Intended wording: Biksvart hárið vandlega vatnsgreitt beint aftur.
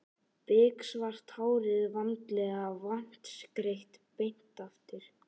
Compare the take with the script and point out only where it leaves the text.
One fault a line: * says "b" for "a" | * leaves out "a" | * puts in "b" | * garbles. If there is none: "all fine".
all fine